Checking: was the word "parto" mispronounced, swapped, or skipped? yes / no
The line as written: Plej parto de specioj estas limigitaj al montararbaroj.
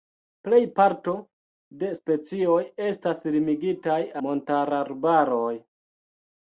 no